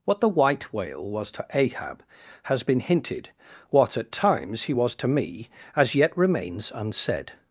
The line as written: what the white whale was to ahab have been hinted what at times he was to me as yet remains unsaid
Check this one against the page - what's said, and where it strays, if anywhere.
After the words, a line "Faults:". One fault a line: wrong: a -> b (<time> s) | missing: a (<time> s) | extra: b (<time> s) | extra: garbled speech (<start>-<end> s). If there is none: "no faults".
what the white whale was to ahab has been hinted what at times he was to me as yet remains unsaid
Faults:
wrong: have -> has (2.4 s)